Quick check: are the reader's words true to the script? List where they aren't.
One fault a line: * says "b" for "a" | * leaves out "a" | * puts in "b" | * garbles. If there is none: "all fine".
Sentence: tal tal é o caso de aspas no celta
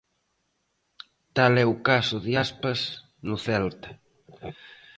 * leaves out "tal"